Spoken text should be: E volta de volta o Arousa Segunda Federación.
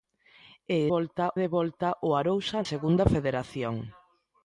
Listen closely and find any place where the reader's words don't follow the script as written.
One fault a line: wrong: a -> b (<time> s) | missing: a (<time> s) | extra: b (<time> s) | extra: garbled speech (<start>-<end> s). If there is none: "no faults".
no faults